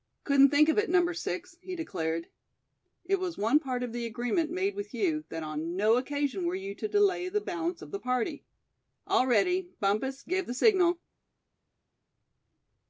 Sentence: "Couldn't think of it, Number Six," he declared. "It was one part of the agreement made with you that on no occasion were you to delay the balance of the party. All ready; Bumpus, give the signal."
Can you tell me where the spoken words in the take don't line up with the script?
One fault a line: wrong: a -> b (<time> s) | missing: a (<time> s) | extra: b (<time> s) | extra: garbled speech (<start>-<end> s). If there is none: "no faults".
no faults